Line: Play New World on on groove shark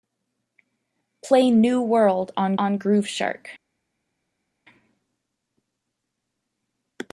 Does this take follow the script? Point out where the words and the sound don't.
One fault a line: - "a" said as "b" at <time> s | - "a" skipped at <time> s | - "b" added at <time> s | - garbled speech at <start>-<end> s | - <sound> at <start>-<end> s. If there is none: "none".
none